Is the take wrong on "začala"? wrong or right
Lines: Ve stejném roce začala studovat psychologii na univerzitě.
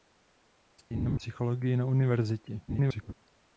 wrong